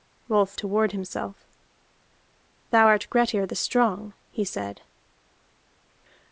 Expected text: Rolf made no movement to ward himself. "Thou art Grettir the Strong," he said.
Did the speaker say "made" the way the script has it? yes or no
no